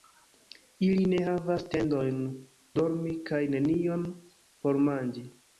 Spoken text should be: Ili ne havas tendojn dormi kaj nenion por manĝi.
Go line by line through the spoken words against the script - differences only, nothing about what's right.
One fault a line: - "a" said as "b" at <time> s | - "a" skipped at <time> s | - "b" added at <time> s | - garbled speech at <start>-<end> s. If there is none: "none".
none